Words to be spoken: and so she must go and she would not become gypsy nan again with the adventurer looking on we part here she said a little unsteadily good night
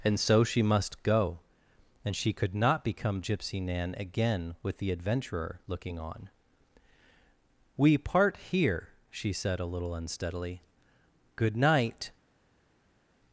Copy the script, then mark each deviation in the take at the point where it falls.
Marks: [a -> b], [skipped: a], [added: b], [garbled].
and so she must go and she [would -> could] not become gypsy nan again with the adventurer looking on we part here she said a little unsteadily good night